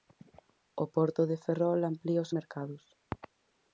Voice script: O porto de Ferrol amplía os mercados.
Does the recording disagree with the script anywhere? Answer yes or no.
no